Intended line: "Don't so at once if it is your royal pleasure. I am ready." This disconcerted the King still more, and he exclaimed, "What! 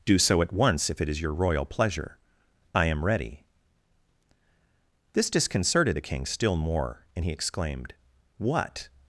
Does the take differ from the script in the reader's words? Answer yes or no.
yes